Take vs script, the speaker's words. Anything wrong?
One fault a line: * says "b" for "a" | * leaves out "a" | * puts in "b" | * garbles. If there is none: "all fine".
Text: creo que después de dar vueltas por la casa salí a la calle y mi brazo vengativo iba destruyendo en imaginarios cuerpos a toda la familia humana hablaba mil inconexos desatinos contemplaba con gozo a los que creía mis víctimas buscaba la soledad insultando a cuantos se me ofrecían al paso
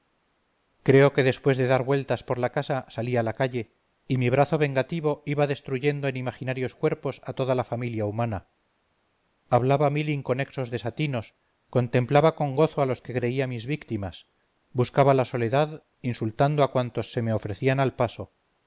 all fine